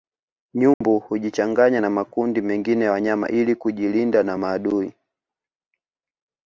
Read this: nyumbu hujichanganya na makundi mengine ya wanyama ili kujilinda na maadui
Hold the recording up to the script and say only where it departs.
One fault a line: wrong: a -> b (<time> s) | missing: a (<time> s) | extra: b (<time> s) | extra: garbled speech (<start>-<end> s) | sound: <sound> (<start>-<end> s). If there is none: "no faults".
sound: dropout (0.7-0.8 s)